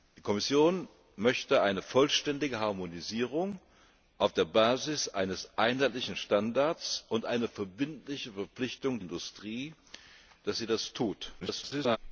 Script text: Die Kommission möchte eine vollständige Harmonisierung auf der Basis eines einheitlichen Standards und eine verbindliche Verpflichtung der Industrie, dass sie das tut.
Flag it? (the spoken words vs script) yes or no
yes